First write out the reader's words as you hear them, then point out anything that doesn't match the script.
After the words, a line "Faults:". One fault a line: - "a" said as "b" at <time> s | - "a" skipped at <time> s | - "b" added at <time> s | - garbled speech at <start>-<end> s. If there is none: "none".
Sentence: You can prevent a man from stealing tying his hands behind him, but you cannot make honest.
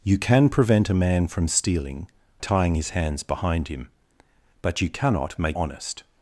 You can prevent a man from stealing tying his hands behind him, but you cannot make honest.
Faults:
none